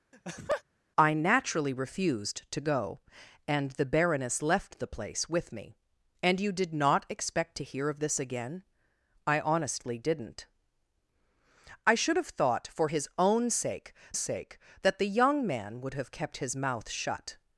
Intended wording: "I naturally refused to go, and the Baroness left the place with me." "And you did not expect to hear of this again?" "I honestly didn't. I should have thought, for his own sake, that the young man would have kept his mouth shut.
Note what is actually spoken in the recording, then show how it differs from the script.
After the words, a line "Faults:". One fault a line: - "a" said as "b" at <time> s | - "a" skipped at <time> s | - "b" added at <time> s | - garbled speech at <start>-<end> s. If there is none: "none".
"I naturally refused to go, and the Baroness left the place with me." "And you did not expect to hear of this again?" "I honestly didn't. I should have thought, for his own sake sake, that the young man would have kept his mouth shut.
Faults:
- "sake" added at 14.1 s